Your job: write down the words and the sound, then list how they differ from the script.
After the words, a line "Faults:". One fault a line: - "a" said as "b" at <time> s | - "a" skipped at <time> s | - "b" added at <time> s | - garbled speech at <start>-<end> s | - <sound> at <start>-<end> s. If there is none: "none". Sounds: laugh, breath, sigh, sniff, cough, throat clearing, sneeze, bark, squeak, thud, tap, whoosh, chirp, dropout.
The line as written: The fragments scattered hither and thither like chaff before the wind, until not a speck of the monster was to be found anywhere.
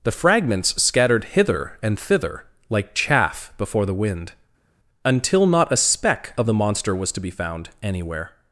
The fragments scattered hither and thither like chaff before the wind, until not a speck of the monster was to be found anywhere.
Faults:
none